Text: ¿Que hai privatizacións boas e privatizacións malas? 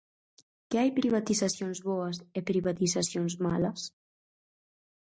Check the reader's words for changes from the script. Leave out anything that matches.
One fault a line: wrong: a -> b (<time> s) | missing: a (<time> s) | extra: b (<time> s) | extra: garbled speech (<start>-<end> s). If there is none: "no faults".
no faults